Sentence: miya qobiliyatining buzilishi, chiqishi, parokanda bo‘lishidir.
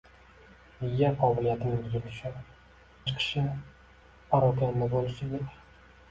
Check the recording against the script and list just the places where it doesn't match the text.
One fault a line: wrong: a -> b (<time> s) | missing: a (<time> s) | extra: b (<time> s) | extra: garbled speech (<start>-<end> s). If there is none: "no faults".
no faults